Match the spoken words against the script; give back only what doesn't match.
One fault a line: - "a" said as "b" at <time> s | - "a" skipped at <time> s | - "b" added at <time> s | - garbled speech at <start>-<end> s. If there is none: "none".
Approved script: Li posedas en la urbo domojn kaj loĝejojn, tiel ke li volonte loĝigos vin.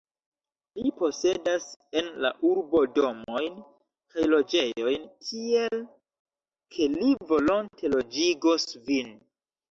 none